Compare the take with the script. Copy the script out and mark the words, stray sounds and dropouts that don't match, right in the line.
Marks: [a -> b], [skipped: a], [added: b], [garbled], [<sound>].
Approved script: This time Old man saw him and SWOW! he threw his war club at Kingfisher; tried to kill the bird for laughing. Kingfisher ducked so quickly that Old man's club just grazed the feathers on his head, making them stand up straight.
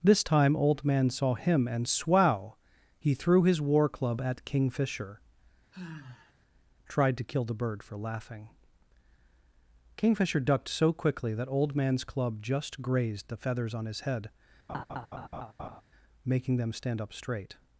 This time Old man saw him and SWOW! he threw his war club at Kingfisher; [sigh] tried to kill the bird for laughing. Kingfisher ducked so quickly that Old man's club just grazed the feathers on his head, [laugh] making them stand up straight.